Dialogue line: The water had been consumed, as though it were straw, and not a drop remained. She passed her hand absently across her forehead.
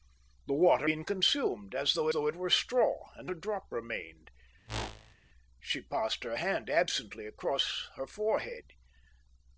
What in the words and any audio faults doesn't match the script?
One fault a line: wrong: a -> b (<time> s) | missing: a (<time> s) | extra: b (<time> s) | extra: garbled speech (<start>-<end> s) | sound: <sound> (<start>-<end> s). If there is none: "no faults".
missing: had (0.9 s)
extra: though (2.1 s)
missing: not (3.3 s)
sound: whoosh (4.7-5.2 s)